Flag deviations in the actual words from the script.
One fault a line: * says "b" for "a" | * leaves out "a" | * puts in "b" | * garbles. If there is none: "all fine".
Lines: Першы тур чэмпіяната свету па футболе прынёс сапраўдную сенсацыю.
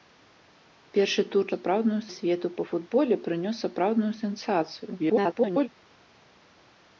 * says "сапраўдную" for "чэмпіяната"
* garbles